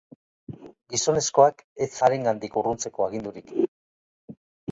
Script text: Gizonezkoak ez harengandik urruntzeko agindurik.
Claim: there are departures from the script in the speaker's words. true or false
false